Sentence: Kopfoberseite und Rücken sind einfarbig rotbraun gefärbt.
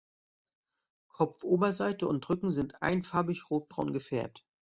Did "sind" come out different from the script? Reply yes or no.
no